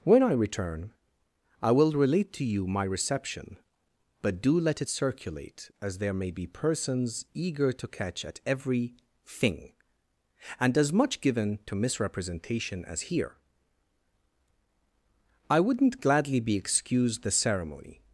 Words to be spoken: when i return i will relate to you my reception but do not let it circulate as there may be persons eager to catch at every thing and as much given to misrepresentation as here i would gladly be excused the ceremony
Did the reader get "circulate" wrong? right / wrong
right